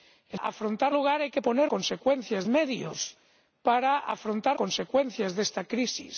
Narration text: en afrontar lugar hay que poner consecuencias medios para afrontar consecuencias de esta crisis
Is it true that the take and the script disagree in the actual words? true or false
false